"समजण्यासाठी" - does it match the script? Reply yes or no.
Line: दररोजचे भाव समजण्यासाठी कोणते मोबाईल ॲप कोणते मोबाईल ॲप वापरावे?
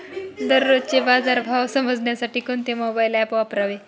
yes